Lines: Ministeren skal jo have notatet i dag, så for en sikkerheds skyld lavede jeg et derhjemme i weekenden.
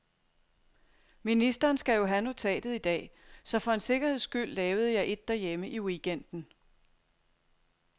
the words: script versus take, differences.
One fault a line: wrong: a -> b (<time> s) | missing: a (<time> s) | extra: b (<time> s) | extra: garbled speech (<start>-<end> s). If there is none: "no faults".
no faults